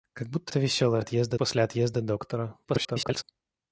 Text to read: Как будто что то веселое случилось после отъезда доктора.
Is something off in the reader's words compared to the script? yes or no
yes